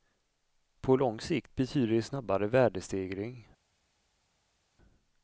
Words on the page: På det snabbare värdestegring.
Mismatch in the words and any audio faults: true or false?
true